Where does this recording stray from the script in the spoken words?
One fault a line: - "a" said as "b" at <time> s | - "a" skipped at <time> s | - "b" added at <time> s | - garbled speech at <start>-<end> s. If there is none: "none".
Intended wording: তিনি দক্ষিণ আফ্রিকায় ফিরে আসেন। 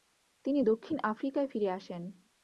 none